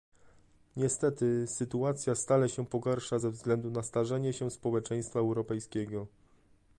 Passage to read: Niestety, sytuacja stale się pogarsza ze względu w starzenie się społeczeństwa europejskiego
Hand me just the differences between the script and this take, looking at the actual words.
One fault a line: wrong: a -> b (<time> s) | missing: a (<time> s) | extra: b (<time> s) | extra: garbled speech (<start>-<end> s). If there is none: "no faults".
wrong: w -> na (3.7 s)